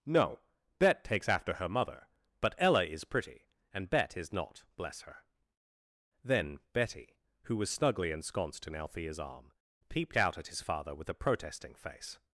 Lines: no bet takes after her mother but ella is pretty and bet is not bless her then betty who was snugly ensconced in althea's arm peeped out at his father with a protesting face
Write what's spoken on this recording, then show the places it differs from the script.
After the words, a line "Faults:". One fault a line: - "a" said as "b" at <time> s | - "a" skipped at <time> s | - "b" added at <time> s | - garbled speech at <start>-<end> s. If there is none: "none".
no bet takes after her mother but ella is pretty and bet is not bless her then betty who was snugly ensconced in althea's arm peeped out at his father with a protesting face
Faults:
none